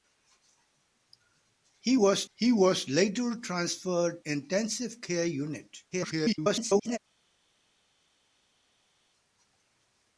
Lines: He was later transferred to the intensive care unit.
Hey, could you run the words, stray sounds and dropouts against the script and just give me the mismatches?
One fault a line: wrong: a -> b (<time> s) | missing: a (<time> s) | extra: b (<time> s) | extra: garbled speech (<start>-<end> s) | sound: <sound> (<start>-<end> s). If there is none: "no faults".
extra: he was (2.3 s)
missing: to the (4.2 s)
extra: garbled speech (5.9-7.0 s)